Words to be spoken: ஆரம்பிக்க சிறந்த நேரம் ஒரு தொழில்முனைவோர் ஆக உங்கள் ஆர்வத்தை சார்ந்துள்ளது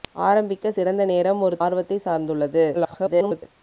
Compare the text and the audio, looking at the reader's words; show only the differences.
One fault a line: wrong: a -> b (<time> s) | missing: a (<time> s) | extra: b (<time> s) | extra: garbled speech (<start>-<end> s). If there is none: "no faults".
missing: தொழில்முனைவோர் ஆக உங்கள் (1.6 s)
extra: garbled speech (2.7-3.4 s)